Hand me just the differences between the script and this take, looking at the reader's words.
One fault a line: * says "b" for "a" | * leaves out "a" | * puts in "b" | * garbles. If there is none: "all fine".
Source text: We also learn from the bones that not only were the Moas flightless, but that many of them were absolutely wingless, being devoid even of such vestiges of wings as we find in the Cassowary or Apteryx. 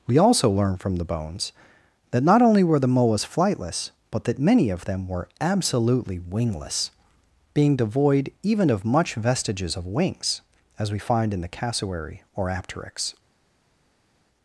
* says "much" for "such"